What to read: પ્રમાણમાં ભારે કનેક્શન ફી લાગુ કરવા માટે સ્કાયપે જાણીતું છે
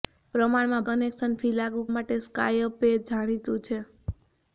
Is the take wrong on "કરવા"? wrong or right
wrong